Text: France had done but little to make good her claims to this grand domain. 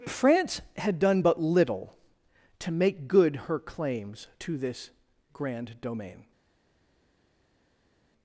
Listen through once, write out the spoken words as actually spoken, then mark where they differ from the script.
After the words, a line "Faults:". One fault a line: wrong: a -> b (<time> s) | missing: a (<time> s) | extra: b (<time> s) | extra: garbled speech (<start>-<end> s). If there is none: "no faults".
France had done but little to make good her claims to this grand domain.
Faults:
no faults